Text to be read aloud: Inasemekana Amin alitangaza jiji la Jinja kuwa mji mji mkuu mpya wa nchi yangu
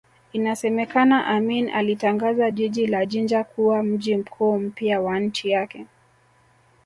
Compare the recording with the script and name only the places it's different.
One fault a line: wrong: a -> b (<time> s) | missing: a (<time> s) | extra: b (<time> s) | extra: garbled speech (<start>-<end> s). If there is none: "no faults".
missing: mji (4.2 s)
wrong: yangu -> yake (5.5 s)